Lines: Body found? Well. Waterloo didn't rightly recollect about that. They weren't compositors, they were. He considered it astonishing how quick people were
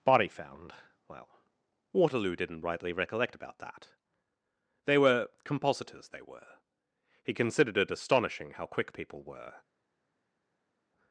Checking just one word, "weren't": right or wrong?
wrong